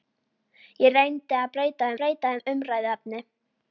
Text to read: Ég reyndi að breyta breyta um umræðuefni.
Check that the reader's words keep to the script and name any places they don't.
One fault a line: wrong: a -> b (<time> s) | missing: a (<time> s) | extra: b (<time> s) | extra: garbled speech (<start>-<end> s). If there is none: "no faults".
no faults